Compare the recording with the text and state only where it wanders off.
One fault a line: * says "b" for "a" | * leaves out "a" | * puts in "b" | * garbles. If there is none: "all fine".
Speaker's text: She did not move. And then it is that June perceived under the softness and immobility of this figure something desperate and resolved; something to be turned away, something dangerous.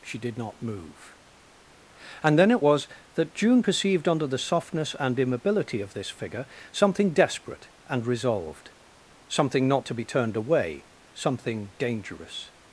* says "was" for "is"
* puts in "not"